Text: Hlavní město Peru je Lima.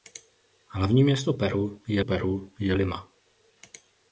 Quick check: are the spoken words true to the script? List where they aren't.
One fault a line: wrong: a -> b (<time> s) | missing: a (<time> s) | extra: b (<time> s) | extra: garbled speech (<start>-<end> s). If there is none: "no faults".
extra: Peru je (2.0 s)